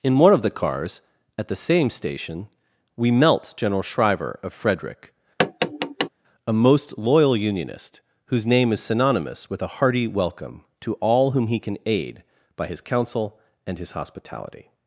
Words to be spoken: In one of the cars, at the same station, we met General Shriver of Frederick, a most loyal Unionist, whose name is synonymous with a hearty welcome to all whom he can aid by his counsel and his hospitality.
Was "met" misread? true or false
true